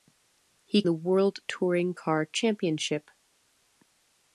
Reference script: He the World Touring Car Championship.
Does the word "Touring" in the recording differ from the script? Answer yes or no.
no